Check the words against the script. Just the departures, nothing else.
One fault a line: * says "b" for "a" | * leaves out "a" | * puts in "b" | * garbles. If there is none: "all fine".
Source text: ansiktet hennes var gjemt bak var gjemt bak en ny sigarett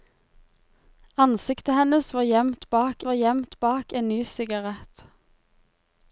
all fine